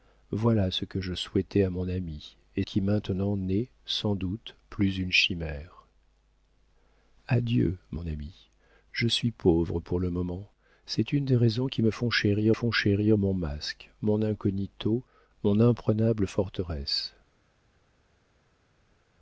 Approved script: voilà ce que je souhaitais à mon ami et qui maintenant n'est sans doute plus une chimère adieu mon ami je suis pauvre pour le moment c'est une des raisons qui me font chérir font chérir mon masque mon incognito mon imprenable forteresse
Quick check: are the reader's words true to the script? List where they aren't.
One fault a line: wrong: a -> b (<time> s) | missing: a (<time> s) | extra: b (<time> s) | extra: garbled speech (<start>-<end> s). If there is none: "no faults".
no faults